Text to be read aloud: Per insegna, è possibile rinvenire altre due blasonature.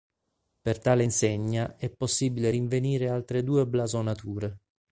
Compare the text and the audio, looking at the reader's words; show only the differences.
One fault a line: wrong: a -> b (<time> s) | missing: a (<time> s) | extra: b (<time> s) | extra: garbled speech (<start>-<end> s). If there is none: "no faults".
extra: tale (0.8 s)